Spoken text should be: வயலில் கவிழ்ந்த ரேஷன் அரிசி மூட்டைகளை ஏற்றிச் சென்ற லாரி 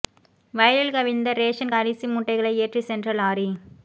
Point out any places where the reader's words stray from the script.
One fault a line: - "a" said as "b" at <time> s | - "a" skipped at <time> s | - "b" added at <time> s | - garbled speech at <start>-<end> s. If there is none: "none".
none